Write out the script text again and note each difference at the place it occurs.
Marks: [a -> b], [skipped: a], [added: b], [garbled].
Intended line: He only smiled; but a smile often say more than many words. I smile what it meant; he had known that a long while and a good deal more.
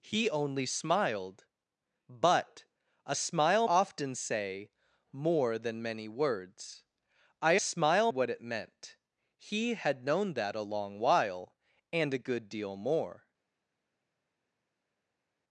He only smiled; but a smile often say more than many words. I smile what it meant; he had known that a long while and a good deal more.